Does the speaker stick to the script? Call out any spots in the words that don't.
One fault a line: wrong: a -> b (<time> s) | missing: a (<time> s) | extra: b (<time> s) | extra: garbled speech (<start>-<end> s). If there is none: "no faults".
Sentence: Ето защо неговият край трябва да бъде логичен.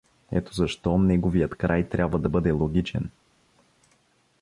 no faults